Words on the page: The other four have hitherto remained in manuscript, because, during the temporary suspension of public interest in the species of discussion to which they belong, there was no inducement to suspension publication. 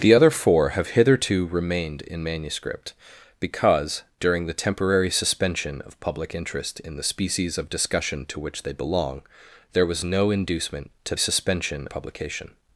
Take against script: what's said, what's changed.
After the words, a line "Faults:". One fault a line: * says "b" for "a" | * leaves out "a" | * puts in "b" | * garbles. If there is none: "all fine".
The other four have hitherto remained in manuscript, because, during the temporary suspension of public interest in the species of discussion to which they belong, there was no inducement to suspension publication.
Faults:
all fine